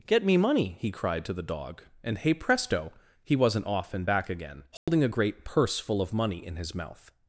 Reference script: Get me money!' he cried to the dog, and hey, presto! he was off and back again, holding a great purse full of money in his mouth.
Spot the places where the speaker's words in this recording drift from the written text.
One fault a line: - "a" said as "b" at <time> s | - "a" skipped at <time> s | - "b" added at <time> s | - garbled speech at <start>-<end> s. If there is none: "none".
- "was" said as "wasn't" at 3.4 s